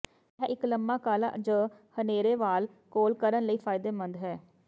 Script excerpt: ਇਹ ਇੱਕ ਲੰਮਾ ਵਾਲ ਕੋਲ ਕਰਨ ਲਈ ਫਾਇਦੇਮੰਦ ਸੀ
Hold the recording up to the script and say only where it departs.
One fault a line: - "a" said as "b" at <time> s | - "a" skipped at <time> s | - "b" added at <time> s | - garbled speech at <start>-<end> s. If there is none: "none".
- "ਕਾਲਾ ਜ ਹਨੇਰੇ" added at 1.0 s
- "ਸੀ" said as "ਹੈ" at 4.2 s